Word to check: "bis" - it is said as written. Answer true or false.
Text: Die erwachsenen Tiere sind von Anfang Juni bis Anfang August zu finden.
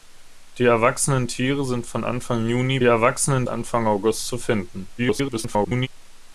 false